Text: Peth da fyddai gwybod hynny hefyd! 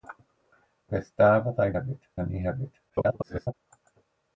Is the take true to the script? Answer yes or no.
no